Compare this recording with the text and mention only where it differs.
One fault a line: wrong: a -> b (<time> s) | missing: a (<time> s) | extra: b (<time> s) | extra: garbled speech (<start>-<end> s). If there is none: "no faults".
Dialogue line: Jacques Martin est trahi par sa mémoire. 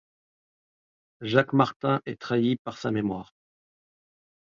no faults